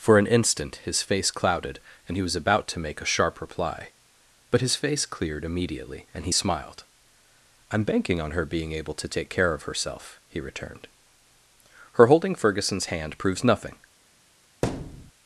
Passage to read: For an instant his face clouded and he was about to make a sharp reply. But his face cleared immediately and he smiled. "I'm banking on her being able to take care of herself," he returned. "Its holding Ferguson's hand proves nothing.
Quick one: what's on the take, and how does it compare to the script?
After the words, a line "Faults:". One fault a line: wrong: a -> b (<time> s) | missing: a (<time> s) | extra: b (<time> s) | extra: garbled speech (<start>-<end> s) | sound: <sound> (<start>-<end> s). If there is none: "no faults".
For an instant his face clouded and he was about to make a sharp reply. But his face cleared immediately and he smiled. "I'm banking on her being able to take care of herself," he returned. "Her holding Ferguson's hand proves nothing.
Faults:
wrong: Its -> Her (11.9 s)
sound: thud (14.6-15.1 s)